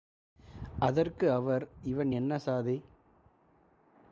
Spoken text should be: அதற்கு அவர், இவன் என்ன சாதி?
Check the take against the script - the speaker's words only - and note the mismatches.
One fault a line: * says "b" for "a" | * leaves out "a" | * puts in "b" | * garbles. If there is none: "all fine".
all fine